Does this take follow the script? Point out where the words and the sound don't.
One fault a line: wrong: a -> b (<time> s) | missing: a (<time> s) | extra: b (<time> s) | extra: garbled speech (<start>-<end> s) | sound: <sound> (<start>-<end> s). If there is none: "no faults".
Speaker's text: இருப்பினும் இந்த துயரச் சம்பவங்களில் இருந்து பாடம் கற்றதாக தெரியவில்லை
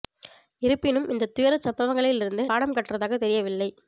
no faults